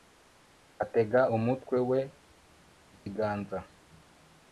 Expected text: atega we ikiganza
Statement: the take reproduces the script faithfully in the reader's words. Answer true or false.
false